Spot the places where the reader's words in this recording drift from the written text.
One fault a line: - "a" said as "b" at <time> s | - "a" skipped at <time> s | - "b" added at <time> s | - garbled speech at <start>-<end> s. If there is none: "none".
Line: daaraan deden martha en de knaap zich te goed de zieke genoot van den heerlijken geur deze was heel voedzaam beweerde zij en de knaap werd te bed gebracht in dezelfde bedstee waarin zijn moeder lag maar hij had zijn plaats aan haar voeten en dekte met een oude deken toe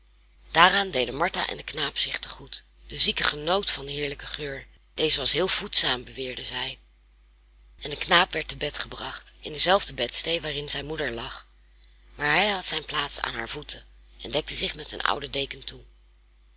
- "zich" added at 14.5 s